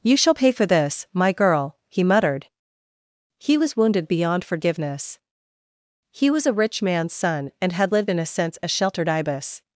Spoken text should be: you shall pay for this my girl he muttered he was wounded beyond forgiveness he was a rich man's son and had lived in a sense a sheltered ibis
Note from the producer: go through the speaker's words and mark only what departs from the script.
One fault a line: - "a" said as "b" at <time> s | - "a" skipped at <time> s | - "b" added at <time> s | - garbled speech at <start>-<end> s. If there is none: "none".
none